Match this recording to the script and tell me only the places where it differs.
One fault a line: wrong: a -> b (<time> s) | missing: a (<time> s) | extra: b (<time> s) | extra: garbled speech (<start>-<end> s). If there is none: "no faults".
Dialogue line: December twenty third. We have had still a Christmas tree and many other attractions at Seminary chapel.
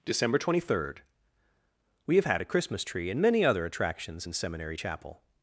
missing: still (2.4 s)
wrong: at -> in (4.2 s)